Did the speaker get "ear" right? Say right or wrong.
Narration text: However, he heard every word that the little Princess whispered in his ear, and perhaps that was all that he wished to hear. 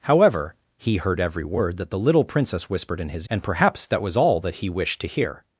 wrong